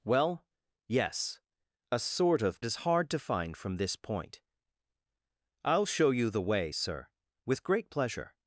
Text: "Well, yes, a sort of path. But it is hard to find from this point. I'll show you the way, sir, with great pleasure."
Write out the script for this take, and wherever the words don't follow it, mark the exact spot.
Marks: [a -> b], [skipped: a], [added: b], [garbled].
"Well, yes, a sort of [skipped: path. But it] is hard to find from this point. I'll show you the way, sir, with great pleasure."